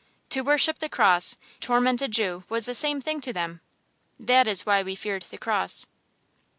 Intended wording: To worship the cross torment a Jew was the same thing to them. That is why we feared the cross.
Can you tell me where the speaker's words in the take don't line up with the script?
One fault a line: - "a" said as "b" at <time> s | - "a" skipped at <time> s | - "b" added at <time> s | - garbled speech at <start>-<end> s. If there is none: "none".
none